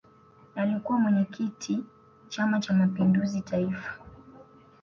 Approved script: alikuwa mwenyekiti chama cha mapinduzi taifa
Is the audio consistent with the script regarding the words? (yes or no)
yes